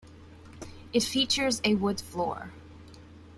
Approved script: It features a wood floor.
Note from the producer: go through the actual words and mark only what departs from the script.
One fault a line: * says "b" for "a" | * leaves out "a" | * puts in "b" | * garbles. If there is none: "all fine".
all fine